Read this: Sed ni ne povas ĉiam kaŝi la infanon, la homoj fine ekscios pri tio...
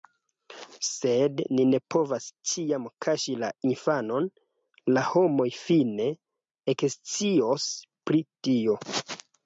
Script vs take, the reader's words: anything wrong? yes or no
no